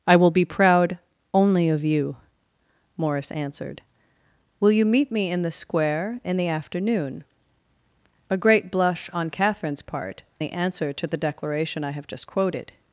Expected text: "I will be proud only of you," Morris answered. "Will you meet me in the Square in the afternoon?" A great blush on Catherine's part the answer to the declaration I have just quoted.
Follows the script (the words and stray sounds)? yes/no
yes